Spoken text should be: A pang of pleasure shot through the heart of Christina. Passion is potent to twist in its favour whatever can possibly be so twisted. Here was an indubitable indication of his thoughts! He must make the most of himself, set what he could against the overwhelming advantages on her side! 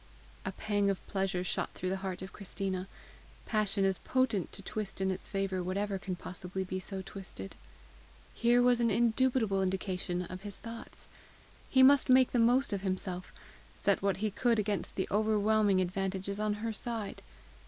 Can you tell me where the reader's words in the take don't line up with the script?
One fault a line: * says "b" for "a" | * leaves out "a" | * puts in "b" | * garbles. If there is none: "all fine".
all fine